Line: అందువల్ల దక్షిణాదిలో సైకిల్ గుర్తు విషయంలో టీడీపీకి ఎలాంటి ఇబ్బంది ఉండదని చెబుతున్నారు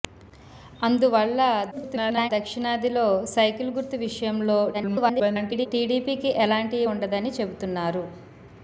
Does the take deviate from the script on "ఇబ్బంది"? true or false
true